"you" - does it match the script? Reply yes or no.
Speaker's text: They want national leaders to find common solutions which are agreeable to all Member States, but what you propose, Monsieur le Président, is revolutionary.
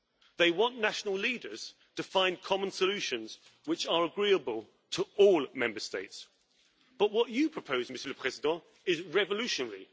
yes